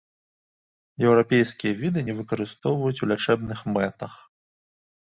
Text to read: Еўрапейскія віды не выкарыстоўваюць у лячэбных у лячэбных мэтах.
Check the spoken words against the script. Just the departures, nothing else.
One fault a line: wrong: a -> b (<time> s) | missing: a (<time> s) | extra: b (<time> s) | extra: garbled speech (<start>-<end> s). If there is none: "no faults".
missing: у лячэбных (3.6 s)